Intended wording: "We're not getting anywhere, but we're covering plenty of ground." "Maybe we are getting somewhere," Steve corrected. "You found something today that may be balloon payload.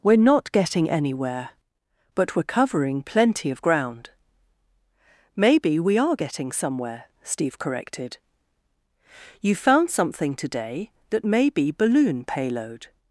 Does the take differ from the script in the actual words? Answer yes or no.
no